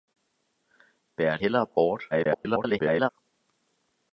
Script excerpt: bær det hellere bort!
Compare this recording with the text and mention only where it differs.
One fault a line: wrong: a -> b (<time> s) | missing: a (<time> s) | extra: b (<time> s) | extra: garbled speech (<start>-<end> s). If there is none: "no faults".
missing: det (1.4 s)
extra: garbled speech (2.1-3.1 s)